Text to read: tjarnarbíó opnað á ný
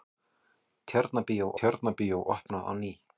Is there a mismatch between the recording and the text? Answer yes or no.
yes